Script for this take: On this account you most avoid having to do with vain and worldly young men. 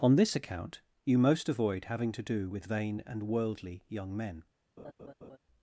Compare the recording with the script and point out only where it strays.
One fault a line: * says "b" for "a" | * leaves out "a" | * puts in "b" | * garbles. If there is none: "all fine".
all fine